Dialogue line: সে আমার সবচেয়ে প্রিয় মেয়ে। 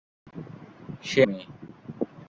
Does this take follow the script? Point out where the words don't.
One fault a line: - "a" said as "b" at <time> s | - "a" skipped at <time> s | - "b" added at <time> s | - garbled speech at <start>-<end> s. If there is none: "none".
- "আমার সবচেয়ে প্রিয়" skipped at 1.2 s